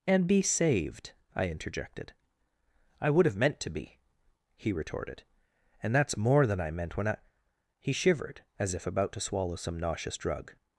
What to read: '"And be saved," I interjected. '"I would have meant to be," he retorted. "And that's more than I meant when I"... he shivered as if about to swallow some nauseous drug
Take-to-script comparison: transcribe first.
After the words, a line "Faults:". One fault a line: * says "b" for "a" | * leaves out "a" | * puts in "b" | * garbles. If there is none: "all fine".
'"And be saved," I interjected. '"I would have meant to be," he retorted. "And that's more than I meant when I"... he shivered as if about to swallow some nauseous drug
Faults:
all fine